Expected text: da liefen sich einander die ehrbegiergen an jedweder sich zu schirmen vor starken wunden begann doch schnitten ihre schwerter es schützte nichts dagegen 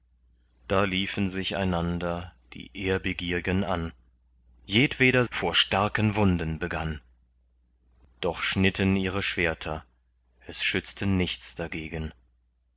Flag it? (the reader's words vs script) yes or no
yes